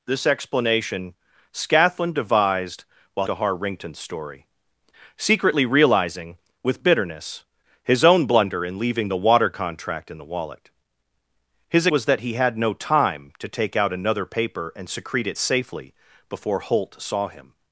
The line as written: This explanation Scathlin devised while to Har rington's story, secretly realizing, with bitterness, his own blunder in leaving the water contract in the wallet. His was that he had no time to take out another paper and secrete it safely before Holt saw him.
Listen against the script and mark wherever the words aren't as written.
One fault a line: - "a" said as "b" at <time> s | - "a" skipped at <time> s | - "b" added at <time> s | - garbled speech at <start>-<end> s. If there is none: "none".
none